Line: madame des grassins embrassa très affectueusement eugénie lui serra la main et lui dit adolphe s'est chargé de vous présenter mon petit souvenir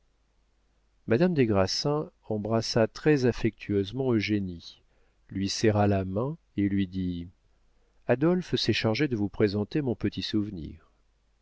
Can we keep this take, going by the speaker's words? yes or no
yes